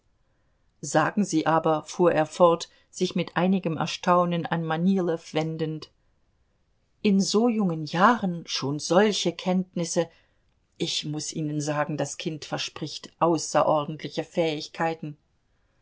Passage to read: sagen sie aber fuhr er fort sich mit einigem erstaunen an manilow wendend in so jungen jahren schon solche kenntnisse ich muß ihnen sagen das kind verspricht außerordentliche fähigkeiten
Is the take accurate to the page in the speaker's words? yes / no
yes